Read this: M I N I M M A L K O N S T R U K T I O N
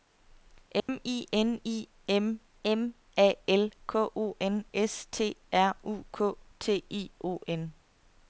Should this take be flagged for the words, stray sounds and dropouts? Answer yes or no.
yes